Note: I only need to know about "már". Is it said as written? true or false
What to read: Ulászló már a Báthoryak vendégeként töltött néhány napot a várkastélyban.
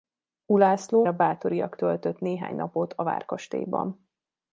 false